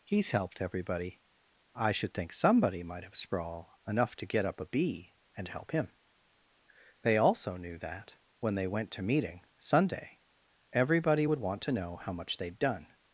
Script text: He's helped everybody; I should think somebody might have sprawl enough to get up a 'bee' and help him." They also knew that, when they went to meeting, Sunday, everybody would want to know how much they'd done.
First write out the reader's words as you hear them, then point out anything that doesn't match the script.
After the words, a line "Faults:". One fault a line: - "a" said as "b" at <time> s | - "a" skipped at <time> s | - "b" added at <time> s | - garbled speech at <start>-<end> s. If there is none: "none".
He's helped everybody; I should think somebody might have sprawl enough to get up a 'bee' and help him." They also knew that, when they went to meeting, Sunday, everybody would want to know how much they'd done.
Faults:
none